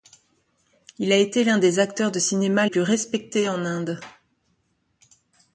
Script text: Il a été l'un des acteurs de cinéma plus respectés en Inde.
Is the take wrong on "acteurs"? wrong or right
right